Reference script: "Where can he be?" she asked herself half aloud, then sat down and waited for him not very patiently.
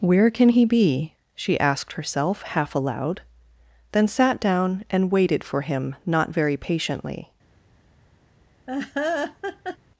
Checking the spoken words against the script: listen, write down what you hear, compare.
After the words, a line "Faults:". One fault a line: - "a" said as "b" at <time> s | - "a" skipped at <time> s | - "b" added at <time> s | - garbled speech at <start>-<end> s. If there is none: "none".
"Where can he be?" she asked herself half aloud, then sat down and waited for him not very patiently.
Faults:
none